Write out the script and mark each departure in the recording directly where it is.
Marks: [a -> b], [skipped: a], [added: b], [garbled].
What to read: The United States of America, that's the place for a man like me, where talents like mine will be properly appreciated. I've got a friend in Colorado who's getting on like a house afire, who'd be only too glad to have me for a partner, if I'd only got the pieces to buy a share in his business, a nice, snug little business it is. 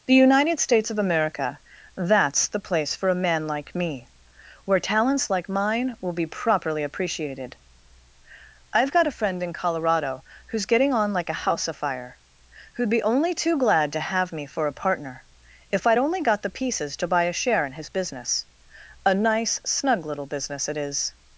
The United States of America, that's the place for a man like me, where talents like mine will be properly appreciated. I've got a friend in Colorado who's getting on like a house afire, who'd be only too glad to have me for a partner, if I'd only got the pieces to buy a share in his business, a nice, snug little business it is.